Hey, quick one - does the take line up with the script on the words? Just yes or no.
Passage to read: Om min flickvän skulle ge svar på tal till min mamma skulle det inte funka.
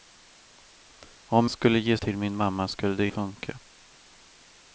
no